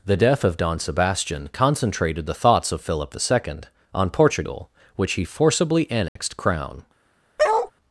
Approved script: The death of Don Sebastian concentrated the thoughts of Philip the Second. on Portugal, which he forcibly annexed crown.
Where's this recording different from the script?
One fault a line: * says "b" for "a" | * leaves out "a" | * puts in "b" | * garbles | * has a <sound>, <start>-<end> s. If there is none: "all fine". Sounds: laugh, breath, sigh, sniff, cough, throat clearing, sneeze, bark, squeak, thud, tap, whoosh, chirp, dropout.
* has a dropout, 6.1-6.2 s
* has a bark, 7.4-7.7 s